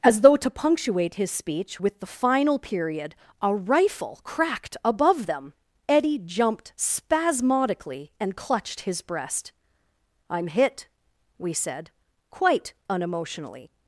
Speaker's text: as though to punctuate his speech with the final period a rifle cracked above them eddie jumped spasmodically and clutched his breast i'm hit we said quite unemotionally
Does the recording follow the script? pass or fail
pass